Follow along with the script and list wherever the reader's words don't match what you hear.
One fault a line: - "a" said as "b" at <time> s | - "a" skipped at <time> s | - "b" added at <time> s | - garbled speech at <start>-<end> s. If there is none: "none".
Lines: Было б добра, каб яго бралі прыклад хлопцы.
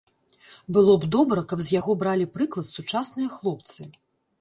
- "з" added at 1.7 s
- "сучасныя" added at 2.8 s